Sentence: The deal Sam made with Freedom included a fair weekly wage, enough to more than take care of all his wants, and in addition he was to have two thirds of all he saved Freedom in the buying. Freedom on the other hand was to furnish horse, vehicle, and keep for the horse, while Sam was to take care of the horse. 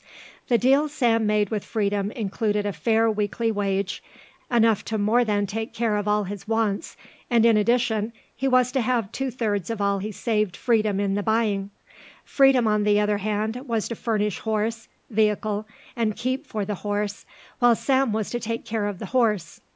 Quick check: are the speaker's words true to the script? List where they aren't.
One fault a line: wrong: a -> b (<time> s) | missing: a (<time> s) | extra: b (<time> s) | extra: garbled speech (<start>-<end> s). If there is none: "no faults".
no faults